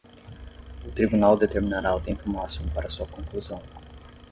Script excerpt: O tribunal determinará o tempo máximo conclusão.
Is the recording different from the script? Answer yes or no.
yes